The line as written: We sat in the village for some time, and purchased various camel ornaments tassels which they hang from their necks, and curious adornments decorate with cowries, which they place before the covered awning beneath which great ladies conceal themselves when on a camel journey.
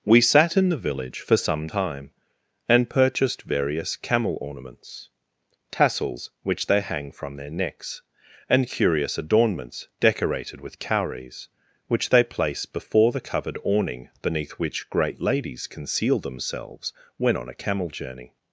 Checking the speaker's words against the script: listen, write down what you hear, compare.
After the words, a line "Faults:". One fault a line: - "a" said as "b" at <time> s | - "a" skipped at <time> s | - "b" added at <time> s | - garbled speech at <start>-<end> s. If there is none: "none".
We sat in the village for some time, and purchased various camel ornaments tassels which they hang from their necks, and curious adornments decorated with cowries, which they place before the covered awning beneath which great ladies conceal themselves when on a camel journey.
Faults:
- "decorate" said as "decorated" at 10.0 s